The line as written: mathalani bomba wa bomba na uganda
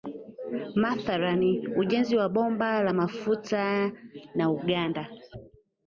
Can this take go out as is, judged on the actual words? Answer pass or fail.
fail